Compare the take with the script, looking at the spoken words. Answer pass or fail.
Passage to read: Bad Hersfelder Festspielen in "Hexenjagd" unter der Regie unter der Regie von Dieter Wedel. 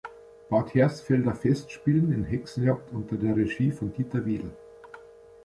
fail